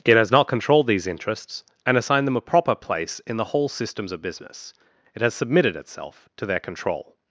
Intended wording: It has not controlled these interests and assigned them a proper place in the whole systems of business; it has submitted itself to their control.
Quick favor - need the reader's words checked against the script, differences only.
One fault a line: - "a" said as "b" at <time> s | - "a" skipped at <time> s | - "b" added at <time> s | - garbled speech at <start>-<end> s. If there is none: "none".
none